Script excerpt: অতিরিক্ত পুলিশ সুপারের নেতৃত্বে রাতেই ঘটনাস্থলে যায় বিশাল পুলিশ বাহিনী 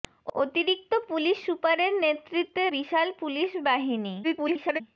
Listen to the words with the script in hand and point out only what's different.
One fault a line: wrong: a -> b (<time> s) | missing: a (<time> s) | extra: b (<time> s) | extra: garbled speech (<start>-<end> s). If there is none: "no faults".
missing: রাতেই ঘটনাস্থলে যায় (2.6 s)
extra: garbled speech (4.2-4.8 s)